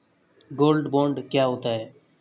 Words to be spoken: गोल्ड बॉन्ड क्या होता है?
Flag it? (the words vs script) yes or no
no